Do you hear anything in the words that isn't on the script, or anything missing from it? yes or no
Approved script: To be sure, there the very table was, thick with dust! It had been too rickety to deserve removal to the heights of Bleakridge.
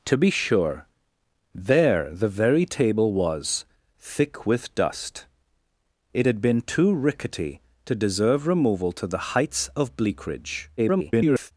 yes